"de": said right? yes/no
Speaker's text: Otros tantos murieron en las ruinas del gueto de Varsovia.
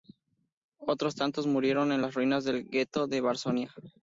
yes